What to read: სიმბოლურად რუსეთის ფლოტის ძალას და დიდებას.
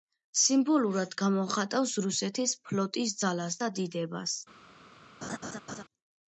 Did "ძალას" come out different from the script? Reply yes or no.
no